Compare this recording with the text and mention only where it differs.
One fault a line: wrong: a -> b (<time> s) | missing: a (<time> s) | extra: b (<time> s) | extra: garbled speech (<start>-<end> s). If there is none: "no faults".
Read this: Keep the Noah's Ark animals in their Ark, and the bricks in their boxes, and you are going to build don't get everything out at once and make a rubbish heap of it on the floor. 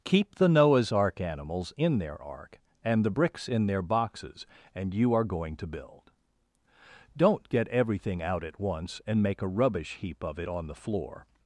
no faults